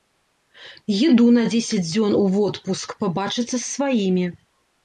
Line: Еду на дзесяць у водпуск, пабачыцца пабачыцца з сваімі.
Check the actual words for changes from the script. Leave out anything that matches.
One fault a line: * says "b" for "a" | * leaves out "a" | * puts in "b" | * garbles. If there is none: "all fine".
* puts in "дзён"
* leaves out "пабачыцца"